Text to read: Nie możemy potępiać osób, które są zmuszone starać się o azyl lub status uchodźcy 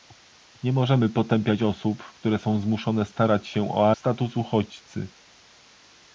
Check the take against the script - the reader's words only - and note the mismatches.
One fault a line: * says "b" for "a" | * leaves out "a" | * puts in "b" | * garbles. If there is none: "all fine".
* leaves out "azyl lub"